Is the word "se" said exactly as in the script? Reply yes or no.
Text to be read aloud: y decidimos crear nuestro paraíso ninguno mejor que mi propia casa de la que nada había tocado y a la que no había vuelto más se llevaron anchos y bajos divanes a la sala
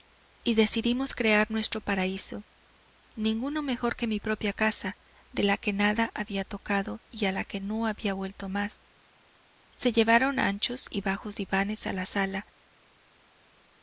yes